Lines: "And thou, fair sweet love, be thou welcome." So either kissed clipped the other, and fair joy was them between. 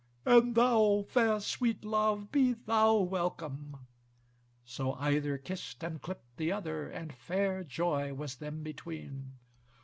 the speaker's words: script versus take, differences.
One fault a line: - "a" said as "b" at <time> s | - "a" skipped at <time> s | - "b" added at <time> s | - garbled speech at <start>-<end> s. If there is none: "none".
- "and" added at 5.8 s